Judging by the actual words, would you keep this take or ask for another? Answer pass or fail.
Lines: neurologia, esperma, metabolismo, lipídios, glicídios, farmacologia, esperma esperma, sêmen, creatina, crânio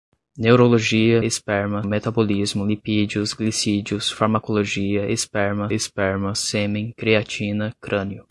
pass